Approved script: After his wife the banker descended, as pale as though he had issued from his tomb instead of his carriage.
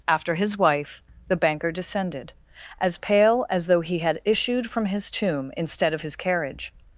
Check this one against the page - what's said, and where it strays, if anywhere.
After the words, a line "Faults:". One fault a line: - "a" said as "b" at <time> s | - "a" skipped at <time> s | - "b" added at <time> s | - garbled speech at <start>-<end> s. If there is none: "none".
After his wife the banker descended, as pale as though he had issued from his tomb instead of his carriage.
Faults:
none